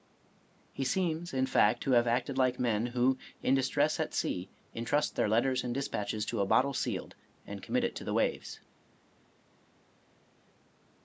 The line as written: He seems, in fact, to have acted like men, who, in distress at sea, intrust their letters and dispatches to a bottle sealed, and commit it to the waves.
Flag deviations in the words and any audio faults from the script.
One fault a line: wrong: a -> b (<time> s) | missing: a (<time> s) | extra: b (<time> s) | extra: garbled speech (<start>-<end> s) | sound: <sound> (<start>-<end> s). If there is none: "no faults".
no faults